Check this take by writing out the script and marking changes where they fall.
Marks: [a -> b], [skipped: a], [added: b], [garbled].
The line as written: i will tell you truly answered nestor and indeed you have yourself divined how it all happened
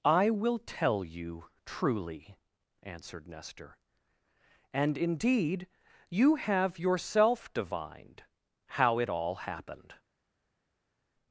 i will tell you truly answered nestor and indeed you have yourself divined how it all happened